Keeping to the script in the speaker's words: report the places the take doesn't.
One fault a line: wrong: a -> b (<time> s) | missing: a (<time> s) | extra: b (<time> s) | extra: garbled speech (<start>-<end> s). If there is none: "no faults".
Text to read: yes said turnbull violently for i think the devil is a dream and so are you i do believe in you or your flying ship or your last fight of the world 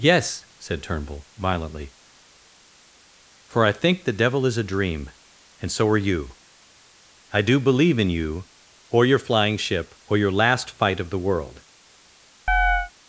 no faults